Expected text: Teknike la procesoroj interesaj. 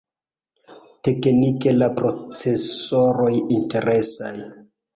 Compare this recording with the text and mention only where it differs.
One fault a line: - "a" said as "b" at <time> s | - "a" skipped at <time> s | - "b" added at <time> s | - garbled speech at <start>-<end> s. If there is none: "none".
none